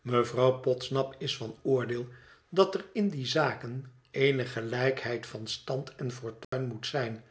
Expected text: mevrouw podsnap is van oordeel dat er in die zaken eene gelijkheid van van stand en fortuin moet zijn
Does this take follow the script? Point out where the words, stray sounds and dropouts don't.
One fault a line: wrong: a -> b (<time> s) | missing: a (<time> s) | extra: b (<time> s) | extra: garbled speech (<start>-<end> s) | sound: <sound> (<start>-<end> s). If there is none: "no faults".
missing: van (5.5 s)
sound: dropout (6.4-6.5 s)